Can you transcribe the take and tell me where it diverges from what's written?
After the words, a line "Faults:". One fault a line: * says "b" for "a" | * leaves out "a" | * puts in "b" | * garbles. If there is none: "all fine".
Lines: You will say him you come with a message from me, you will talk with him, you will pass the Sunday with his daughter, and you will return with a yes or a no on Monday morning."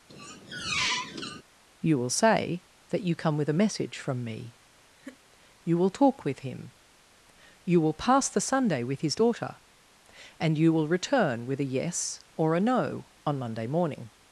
You will say that you come with a message from me, you will talk with him, you will pass the Sunday with his daughter, and you will return with a yes or a no on Monday morning."
Faults:
* says "that" for "him"